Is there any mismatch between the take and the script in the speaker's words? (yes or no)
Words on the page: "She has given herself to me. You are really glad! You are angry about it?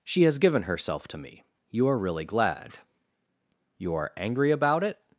no